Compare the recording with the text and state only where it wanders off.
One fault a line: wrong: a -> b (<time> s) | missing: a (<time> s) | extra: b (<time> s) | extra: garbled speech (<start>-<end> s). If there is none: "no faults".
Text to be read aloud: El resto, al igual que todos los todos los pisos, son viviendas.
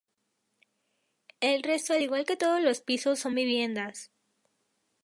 missing: todos los (2.8 s)